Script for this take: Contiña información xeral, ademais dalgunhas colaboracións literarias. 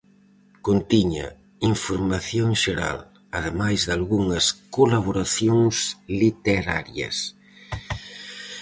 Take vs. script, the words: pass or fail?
pass